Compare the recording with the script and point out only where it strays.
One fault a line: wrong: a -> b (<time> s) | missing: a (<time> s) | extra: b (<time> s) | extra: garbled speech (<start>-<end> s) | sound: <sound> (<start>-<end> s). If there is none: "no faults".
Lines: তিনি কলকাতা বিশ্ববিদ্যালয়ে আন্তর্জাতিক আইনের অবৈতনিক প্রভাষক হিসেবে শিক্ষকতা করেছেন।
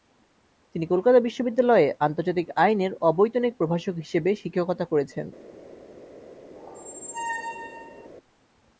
sound: squeak (6.6-8.1 s)